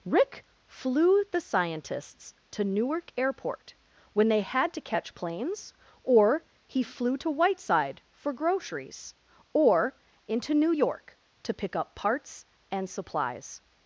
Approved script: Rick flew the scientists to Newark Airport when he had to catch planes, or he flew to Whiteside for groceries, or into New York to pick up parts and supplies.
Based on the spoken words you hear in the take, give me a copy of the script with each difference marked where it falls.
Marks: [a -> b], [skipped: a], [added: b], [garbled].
Rick flew the scientists to Newark Airport when [he -> they] had to catch planes, or he flew to Whiteside for groceries, or into New York to pick up parts and supplies.